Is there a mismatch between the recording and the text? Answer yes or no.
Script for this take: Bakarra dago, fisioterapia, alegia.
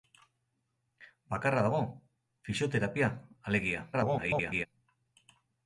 yes